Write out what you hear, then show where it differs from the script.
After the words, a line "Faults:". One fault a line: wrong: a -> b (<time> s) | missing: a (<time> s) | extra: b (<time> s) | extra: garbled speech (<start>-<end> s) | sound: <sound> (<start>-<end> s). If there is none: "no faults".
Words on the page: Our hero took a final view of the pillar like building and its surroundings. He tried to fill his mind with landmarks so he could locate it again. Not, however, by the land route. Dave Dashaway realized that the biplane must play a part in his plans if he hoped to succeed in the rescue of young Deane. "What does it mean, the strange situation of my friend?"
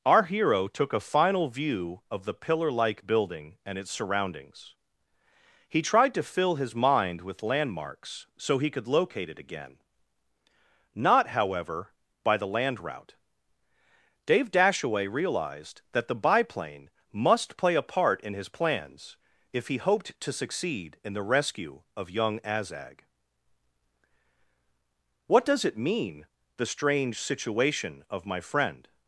Our hero took a final view of the pillar like building and its surroundings. He tried to fill his mind with landmarks so he could locate it again. Not, however, by the land route. Dave Dashaway realized that the biplane must play a part in his plans if he hoped to succeed in the rescue of young Azag. "What does it mean, the strange situation of my friend?"
Faults:
wrong: Deane -> Azag (22.4 s)